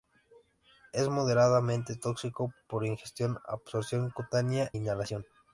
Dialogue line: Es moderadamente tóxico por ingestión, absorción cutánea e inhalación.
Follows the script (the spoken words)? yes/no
no